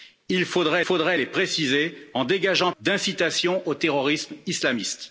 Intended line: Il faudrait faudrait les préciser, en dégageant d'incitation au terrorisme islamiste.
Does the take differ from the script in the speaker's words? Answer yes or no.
no